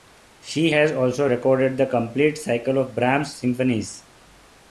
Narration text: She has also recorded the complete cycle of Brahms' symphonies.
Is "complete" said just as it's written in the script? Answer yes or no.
yes